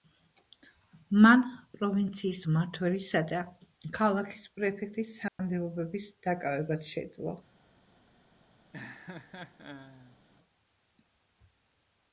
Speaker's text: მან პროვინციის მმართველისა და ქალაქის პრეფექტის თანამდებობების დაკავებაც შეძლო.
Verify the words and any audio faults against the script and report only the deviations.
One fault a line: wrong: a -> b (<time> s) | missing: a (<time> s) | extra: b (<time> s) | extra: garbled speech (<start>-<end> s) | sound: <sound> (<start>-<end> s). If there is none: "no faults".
sound: dropout (5.3-5.4 s)
sound: laugh (8.7-10.2 s)